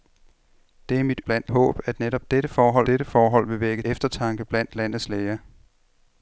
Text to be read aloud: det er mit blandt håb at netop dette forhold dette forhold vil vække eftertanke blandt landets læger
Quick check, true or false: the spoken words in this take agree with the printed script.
true